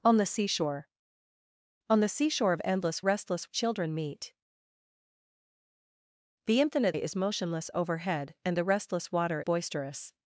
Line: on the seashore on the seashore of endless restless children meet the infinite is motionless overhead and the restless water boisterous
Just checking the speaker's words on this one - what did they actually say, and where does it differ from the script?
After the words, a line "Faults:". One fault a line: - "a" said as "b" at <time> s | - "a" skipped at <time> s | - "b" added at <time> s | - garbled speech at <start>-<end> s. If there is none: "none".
on the seashore on the seashore of endless restless children meet the infinite is motionless overhead and the restless water boisterous
Faults:
none